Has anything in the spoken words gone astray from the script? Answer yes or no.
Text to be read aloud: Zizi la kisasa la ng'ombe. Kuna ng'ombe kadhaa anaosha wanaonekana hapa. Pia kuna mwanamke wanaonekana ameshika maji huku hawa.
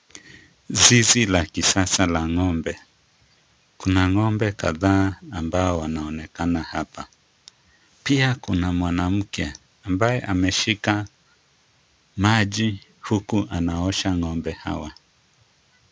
yes